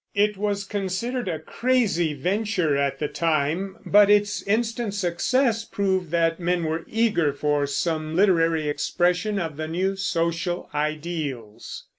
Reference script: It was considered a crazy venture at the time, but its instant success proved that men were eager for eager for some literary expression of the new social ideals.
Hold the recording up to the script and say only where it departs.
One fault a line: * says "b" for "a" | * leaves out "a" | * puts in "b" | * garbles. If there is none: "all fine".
* leaves out "eager for"